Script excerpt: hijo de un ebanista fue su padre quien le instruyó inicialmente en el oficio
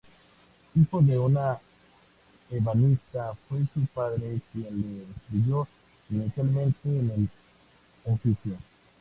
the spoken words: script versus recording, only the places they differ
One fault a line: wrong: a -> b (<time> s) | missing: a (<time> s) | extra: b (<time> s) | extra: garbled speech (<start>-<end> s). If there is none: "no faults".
no faults